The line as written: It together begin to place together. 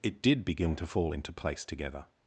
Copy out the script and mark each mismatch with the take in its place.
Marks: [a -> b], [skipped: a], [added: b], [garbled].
It [together -> did] begin to [added: fall into] place together.